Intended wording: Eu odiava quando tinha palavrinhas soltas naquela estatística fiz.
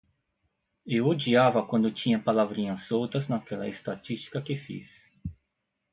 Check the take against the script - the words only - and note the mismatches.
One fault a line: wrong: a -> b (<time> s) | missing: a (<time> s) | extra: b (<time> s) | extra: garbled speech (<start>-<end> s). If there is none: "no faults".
extra: que (4.4 s)